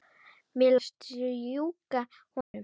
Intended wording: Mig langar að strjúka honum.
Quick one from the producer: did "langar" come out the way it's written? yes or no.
no